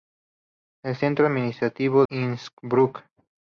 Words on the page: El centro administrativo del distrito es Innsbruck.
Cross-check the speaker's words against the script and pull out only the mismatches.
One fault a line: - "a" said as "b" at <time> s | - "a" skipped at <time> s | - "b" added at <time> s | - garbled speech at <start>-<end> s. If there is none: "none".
- "del distrito es" skipped at 2.1 s